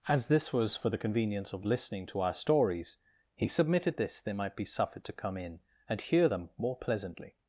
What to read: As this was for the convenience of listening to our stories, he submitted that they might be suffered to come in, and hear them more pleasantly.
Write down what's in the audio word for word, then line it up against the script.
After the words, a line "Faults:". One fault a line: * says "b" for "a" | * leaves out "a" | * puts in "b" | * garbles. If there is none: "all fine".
As this was for the convenience of listening to our stories, he submitted this they might be suffered to come in, and hear them more pleasantly.
Faults:
* says "this" for "that"